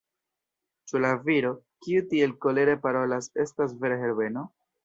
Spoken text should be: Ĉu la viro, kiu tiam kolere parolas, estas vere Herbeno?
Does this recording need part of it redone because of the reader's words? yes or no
yes